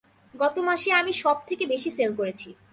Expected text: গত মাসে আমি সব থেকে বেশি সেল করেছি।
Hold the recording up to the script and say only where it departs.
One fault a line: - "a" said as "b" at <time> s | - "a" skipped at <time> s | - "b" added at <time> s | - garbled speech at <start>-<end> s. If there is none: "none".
none